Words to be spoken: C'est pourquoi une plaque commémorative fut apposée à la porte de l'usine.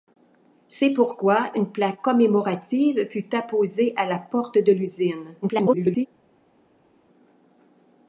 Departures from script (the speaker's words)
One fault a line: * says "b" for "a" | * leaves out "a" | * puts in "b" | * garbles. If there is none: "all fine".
* garbles